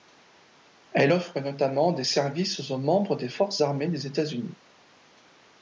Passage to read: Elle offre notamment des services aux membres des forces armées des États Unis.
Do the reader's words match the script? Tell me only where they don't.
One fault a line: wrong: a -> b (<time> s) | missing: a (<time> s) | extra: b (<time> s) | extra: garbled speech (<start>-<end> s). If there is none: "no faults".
no faults